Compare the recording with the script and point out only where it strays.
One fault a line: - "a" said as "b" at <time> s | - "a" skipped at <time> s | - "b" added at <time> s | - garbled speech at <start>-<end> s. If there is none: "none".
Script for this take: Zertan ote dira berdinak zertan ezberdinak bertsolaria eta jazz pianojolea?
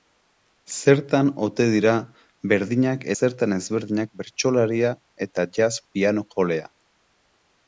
none